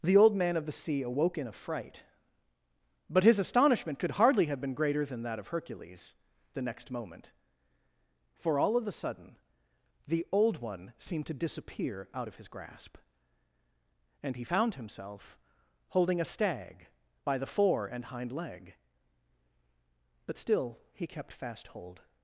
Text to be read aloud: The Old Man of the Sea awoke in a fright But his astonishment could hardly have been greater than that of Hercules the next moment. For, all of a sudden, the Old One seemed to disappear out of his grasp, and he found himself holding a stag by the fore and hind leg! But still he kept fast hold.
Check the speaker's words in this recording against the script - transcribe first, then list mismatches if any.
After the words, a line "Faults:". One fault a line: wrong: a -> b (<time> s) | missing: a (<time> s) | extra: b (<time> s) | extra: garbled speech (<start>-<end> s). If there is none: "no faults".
The Old Man of the Sea awoke in a fright But his astonishment could hardly have been greater than that of Hercules the next moment. For, all of a sudden, the Old One seemed to disappear out of his grasp, and he found himself holding a stag by the fore and hind leg! But still he kept fast hold.
Faults:
no faults